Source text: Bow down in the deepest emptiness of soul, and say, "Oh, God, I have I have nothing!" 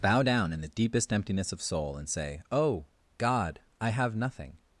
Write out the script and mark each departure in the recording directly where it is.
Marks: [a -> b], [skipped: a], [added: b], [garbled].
Bow down in the deepest emptiness of soul, and say, "Oh, God, I have [skipped: I have] nothing!"